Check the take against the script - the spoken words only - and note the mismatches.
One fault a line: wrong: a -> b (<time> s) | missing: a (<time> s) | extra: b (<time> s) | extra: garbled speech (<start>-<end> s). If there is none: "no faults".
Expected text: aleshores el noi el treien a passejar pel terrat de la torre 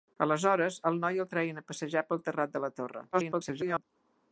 extra: garbled speech (3.1-3.8 s)